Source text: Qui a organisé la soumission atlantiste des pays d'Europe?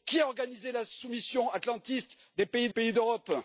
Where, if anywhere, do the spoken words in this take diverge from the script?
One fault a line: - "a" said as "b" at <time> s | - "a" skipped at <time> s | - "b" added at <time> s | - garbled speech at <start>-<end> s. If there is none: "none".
- "pays" added at 2.7 s